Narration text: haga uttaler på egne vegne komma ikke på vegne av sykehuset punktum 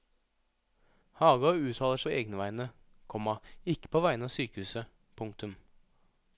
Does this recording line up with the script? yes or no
yes